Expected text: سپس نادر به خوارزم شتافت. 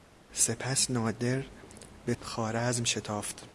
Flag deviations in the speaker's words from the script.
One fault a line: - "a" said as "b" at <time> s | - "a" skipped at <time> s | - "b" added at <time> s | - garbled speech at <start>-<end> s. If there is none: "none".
none